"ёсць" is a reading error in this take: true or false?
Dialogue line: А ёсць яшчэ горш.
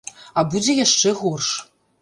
true